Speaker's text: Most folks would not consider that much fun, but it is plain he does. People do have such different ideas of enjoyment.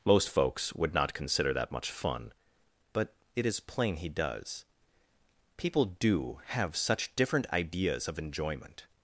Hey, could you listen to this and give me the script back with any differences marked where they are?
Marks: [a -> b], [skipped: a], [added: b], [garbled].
Most folks would not consider that much fun, but it is plain he does. People do have such different ideas of enjoyment.